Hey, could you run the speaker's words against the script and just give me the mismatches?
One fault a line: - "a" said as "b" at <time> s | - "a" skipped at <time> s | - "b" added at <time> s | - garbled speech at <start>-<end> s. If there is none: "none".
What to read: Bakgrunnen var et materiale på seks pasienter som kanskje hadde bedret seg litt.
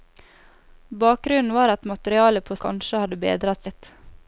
- "seks pasienter som" skipped at 2.5 s
- "seg" skipped at 3.7 s